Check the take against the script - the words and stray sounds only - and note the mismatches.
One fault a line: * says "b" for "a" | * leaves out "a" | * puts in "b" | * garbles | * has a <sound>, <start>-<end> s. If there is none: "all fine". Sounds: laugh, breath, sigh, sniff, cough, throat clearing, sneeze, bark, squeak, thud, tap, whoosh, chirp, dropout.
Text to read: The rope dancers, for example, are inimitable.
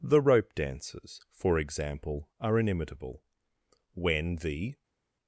* puts in "When the"